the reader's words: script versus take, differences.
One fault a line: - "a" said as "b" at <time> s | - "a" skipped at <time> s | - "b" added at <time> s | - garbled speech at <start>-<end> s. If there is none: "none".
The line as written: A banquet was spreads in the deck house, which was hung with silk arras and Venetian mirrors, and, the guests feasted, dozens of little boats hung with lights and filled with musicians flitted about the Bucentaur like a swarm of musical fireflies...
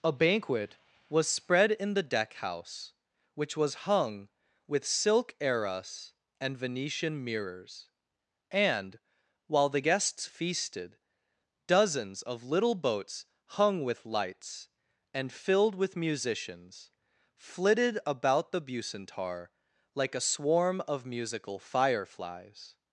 - "spreads" said as "spread" at 1.3 s
- "while" added at 9.5 s